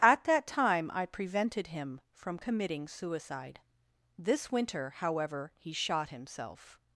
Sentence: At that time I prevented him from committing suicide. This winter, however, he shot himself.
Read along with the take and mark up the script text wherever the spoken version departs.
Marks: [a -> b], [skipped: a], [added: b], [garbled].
At that time I prevented him from committing suicide. This winter, however, he shot himself.